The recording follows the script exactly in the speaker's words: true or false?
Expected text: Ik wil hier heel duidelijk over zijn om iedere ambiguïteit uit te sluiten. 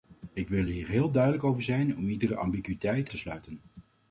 false